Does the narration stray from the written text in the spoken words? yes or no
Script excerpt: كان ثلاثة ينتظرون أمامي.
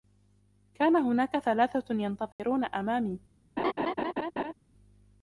yes